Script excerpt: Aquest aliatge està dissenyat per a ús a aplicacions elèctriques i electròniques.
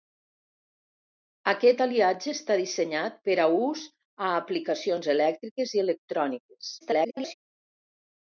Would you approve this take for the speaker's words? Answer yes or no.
no